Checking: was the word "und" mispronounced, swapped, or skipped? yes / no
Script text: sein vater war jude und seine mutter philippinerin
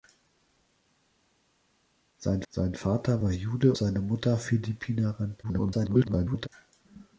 yes